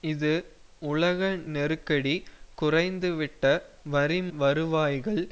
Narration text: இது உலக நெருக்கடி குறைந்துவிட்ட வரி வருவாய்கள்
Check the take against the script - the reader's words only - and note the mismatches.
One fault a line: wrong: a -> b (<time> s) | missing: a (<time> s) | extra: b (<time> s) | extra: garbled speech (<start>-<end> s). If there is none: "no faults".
no faults